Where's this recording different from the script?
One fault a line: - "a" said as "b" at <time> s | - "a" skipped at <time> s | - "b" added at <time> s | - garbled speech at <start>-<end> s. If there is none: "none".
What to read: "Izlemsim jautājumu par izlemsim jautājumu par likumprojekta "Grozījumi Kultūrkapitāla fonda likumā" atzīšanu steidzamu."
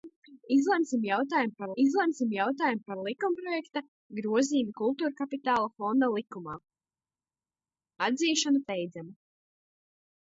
none